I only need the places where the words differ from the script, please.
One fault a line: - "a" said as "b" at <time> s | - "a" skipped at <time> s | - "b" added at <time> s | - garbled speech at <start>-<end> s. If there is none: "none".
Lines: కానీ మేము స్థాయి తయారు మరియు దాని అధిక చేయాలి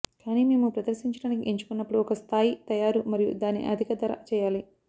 - "ప్రదర్శించడానికి ఎంచుకున్నప్పుడు ఒక" added at 0.8 s
- "ధర" added at 4.0 s